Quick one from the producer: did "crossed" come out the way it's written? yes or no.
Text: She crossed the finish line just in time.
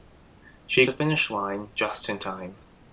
no